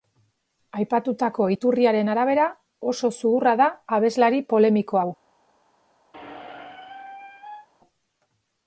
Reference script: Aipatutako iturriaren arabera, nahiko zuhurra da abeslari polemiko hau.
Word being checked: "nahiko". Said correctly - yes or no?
no